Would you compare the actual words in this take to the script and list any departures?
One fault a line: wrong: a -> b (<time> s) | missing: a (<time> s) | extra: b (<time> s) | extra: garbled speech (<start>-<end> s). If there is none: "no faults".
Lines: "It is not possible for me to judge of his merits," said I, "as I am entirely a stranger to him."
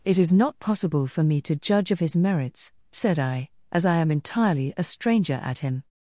wrong: to -> at (5.4 s)